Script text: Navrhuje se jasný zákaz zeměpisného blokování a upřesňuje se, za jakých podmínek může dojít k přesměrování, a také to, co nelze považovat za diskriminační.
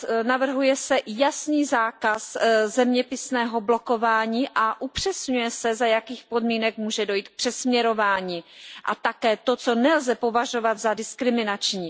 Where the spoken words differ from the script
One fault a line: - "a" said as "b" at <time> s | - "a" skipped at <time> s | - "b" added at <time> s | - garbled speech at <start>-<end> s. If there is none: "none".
none